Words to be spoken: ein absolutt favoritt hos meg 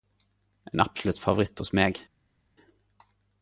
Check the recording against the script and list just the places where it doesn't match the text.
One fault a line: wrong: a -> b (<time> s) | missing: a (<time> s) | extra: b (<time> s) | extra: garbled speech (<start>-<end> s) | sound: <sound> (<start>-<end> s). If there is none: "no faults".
no faults